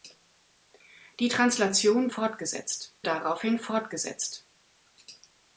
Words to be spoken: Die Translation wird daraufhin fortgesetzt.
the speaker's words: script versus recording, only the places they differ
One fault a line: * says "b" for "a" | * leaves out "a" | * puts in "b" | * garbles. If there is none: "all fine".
* says "fortgesetzt" for "wird"